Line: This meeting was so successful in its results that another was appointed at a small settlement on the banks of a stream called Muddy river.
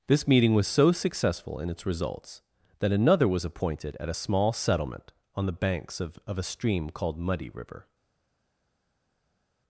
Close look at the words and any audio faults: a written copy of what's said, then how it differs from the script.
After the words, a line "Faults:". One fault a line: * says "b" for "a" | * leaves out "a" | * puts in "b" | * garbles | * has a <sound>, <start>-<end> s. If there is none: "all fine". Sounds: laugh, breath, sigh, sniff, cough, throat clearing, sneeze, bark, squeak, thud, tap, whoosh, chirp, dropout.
This meeting was so successful in its results that another was appointed at a small settlement on the banks of of a stream called Muddy river.
Faults:
* puts in "of"